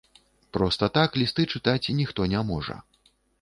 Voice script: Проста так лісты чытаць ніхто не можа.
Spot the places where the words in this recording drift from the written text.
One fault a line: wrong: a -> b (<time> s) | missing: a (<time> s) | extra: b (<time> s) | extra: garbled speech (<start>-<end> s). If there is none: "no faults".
no faults